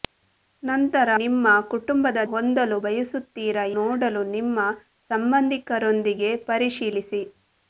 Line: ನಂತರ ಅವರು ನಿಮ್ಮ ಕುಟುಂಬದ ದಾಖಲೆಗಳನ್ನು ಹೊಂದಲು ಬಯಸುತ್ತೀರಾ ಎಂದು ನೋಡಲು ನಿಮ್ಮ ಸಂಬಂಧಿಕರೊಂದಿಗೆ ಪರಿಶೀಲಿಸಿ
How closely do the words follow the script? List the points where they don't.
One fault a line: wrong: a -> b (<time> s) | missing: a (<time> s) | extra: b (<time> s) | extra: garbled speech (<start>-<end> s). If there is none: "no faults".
missing: ಅವರು (1.1 s)
missing: ದಾಖಲೆಗಳನ್ನು (2.2 s)
missing: ಎಂದು (3.6 s)